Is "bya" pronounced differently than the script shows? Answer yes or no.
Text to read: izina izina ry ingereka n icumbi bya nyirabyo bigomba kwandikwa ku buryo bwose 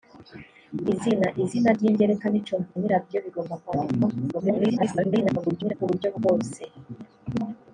yes